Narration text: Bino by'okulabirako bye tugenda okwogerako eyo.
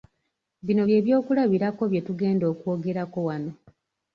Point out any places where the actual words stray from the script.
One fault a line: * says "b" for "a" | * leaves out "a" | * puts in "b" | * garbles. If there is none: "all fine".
* puts in "bye"
* says "wano" for "eyo"